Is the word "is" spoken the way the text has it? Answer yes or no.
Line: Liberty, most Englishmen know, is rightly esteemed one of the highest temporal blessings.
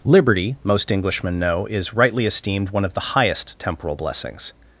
yes